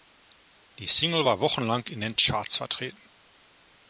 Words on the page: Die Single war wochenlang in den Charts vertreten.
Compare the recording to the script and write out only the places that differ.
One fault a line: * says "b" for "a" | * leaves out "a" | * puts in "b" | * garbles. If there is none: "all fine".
all fine